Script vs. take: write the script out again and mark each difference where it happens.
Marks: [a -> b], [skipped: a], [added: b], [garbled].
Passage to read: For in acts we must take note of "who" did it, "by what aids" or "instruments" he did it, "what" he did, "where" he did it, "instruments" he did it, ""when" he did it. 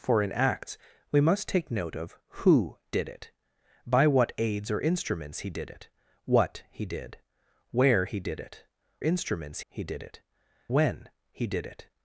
For in acts we must take note of "who" did it, "by what aids" or "instruments" he did it, "what" he did, "where" he did it, "instruments" he did it, ""when" he did it.